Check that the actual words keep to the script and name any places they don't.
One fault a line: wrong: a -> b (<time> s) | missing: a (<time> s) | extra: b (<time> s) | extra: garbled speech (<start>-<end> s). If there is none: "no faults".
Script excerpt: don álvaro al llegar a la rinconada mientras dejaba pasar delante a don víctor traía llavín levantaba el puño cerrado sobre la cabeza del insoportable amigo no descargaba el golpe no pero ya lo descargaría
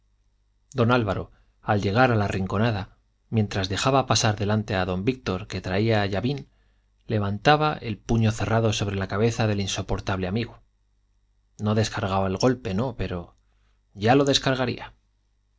extra: que (5.5 s)